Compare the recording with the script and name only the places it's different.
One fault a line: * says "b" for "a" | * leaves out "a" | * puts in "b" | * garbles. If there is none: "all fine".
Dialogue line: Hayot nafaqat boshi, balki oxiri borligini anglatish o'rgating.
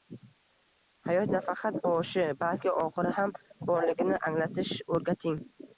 * puts in "ham"